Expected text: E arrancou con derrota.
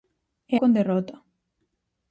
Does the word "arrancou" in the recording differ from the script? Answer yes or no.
yes